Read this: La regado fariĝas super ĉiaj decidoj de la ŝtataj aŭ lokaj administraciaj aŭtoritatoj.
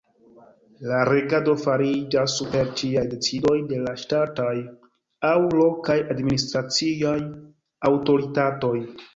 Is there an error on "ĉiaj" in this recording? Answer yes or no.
no